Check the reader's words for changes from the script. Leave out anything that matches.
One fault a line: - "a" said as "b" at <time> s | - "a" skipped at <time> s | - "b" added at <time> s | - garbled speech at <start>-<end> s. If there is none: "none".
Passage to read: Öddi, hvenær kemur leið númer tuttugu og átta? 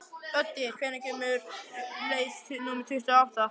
none